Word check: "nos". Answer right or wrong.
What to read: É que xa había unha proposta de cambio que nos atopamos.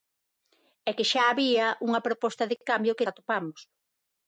wrong